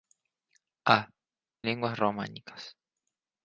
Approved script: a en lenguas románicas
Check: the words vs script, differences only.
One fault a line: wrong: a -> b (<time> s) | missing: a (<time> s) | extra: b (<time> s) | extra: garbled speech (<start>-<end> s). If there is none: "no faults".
missing: en (1.1 s)